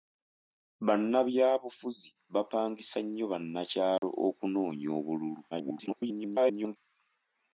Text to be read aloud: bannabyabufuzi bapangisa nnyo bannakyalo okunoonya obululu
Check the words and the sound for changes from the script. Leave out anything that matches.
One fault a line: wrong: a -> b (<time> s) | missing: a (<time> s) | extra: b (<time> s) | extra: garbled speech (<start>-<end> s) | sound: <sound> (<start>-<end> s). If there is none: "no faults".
sound: dropout (4.0-4.0 s)
extra: garbled speech (5.5-6.8 s)